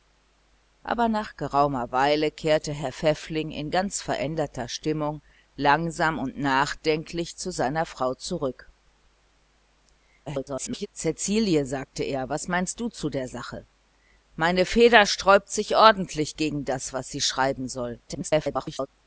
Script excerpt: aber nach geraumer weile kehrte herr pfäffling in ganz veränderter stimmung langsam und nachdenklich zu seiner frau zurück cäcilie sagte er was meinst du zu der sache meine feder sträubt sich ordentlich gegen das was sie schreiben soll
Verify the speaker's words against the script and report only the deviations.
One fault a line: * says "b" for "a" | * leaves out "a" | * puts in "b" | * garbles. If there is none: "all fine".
* garbles
* garbles